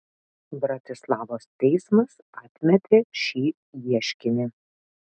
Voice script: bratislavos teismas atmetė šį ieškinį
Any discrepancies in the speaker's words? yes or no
no